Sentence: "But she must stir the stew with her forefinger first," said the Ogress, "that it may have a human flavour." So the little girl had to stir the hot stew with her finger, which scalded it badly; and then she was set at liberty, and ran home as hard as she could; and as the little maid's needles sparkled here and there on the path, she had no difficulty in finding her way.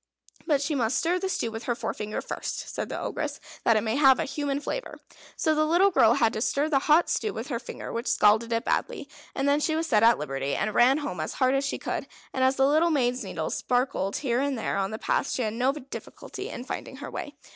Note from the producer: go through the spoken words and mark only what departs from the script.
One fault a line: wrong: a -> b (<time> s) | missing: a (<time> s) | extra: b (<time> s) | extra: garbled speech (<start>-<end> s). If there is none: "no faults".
no faults